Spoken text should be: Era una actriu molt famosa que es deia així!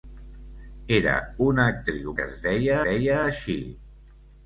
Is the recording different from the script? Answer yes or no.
yes